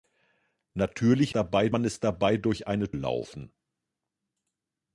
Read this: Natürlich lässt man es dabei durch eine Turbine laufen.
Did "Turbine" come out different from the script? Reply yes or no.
yes